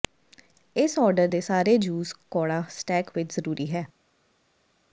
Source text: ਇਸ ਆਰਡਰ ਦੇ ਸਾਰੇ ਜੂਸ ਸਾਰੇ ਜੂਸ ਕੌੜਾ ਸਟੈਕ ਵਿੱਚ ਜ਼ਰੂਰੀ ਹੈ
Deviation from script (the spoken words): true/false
true